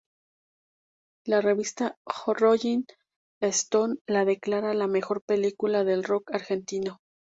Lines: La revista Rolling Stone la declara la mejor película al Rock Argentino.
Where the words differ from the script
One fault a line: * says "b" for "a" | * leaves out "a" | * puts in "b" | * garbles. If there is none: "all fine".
* says "del" for "al"